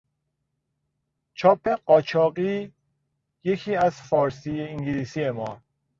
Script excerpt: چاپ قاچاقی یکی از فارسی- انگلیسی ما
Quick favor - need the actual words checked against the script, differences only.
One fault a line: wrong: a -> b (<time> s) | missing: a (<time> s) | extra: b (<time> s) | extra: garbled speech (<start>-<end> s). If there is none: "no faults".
no faults